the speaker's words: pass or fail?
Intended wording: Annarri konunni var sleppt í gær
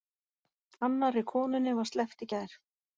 pass